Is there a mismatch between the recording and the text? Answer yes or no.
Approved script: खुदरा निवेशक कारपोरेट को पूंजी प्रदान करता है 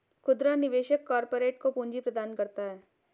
no